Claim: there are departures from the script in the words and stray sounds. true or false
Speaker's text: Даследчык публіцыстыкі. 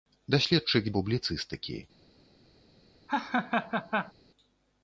true